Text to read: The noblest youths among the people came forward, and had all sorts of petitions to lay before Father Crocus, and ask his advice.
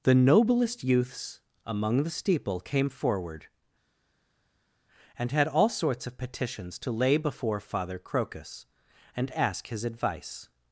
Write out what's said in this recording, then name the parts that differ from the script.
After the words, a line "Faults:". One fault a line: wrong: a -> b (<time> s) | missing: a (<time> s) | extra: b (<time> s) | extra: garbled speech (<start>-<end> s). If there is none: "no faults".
The noblest youths among the steeple came forward, and had all sorts of petitions to lay before Father Crocus, and ask his advice.
Faults:
wrong: people -> steeple (2.1 s)